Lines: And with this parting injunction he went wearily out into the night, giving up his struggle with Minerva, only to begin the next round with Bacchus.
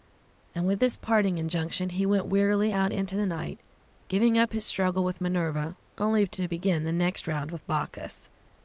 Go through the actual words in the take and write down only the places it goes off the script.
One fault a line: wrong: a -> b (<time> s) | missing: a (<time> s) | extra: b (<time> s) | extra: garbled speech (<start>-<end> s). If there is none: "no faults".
no faults